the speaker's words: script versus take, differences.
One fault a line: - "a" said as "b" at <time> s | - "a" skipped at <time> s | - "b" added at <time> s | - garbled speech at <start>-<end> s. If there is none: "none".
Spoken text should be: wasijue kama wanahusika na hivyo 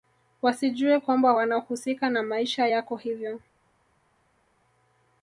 - "kama" said as "kwamba" at 1.0 s
- "maisha yako" added at 2.2 s